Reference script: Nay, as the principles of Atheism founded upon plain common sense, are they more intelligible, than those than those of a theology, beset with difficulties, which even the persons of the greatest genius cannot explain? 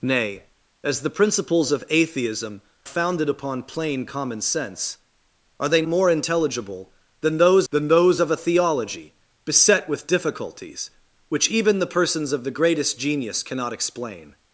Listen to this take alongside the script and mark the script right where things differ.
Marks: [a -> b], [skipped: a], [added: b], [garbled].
Nay, as the principles of Atheism founded upon plain common sense, are they more intelligible, than those than those of a theology, beset with difficulties, which even the persons of the greatest genius cannot explain?